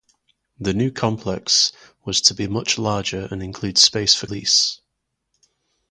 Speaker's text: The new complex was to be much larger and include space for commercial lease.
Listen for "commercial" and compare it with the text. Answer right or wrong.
wrong